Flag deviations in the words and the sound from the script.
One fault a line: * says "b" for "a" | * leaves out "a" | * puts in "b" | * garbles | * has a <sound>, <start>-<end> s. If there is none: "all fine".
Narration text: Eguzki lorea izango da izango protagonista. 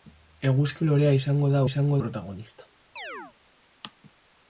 * has a chirp, 3.0-3.3 s